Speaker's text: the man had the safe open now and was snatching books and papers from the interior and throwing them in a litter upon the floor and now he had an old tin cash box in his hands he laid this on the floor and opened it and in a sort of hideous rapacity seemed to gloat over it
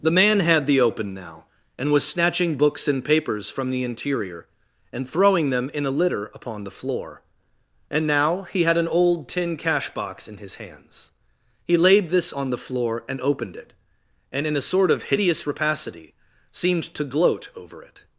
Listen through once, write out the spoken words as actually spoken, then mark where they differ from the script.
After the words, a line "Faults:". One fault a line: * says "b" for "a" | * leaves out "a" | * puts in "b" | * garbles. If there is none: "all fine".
the man had the open now and was snatching books and papers from the interior and throwing them in a litter upon the floor and now he had an old tin cash box in his hands he laid this on the floor and opened it and in a sort of hideous rapacity seemed to gloat over it
Faults:
* leaves out "safe"